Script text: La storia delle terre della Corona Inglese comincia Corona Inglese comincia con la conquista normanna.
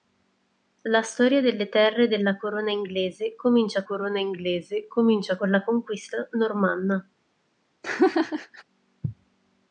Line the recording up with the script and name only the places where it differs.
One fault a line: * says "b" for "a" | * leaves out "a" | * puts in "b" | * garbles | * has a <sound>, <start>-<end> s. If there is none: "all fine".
* has a laugh, 7.8-8.6 s